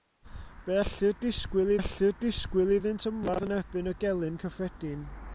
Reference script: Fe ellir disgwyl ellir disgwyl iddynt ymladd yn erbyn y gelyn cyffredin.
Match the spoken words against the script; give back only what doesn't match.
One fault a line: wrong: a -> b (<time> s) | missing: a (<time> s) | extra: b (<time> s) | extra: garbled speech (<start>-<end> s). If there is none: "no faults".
no faults